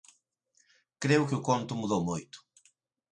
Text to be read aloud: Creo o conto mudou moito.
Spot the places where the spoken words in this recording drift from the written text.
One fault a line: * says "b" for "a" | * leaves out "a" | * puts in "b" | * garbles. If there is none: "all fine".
* puts in "que"